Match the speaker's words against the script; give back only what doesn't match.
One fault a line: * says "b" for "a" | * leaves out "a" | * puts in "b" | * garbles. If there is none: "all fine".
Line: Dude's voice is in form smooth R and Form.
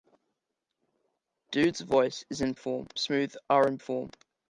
all fine